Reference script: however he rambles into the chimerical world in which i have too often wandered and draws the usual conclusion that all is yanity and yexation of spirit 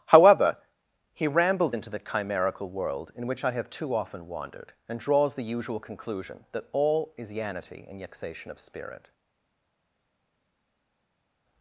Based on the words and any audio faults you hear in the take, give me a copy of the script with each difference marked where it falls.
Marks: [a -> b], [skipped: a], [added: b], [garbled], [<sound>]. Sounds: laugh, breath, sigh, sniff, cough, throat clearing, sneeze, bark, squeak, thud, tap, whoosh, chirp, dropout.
however he rambles into the chimerical world in which i have too often wandered and draws the usual conclusion that all is yanity and yexation of spirit